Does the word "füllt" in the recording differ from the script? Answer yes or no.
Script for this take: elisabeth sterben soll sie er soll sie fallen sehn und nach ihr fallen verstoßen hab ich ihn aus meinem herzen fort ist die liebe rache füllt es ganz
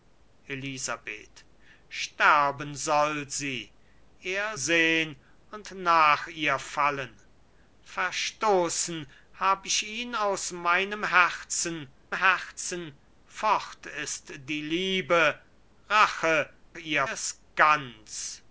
yes